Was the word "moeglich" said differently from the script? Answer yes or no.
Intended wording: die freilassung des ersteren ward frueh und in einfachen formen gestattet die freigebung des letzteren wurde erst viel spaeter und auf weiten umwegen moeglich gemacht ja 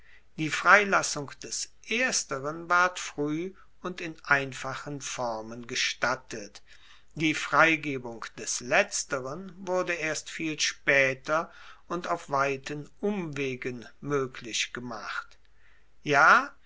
no